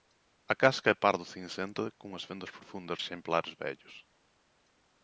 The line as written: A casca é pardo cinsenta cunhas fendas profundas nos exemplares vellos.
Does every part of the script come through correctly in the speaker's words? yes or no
no